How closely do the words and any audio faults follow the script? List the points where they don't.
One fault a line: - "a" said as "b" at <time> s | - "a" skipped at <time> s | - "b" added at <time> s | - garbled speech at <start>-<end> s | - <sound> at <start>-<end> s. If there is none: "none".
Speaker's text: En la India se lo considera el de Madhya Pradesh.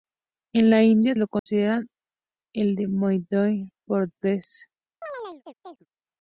- "se" skipped at 1.1 s
- dropout at 1.4-1.5 s
- chirp at 5.0-5.9 s